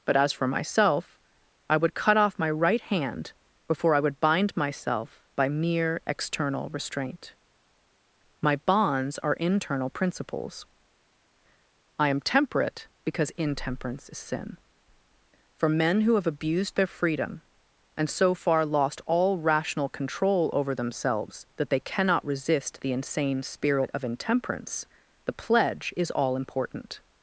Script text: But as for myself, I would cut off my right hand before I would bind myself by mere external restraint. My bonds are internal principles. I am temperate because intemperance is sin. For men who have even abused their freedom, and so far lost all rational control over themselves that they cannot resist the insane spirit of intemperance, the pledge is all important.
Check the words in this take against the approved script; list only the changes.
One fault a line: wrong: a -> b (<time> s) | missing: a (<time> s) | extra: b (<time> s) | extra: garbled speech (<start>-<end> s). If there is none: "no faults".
missing: even (16.3 s)